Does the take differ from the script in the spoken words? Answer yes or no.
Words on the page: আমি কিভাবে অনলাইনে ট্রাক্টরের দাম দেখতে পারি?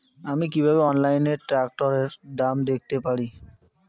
no